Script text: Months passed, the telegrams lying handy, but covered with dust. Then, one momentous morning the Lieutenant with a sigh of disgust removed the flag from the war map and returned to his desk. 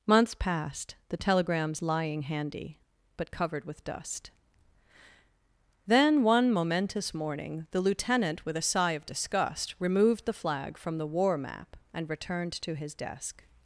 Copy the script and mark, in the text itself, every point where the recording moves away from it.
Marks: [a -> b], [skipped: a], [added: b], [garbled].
Months passed, the telegrams lying handy, but covered with dust. Then, one momentous morning the Lieutenant with a sigh of disgust removed the flag from the war map and returned to his desk.